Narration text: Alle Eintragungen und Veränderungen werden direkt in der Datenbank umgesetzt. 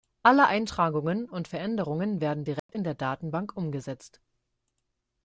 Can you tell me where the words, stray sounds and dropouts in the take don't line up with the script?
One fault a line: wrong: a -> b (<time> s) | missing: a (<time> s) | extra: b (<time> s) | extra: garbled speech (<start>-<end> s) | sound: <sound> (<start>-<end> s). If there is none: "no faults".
sound: dropout (2.6-2.7 s)